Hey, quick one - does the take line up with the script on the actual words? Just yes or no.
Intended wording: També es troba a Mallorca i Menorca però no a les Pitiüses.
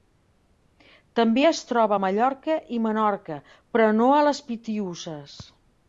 yes